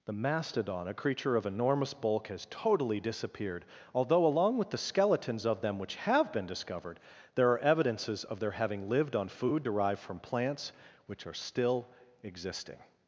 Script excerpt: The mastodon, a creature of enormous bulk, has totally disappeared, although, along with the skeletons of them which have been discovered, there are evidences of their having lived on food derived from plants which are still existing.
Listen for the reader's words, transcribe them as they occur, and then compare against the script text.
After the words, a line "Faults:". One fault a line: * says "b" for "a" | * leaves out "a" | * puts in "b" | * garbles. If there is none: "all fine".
The mastodon, a creature of enormous bulk, has totally disappeared, although, along with the skeletons of them which have been discovered, there are evidences of their having lived on food derived from plants which are still existing.
Faults:
all fine